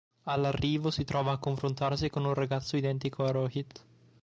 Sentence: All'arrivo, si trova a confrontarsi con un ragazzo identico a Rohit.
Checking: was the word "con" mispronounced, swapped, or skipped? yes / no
no